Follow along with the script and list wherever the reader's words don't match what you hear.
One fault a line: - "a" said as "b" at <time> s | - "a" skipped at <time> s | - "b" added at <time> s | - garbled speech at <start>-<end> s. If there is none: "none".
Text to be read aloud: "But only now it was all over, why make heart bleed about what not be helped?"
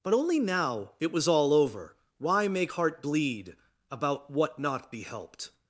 none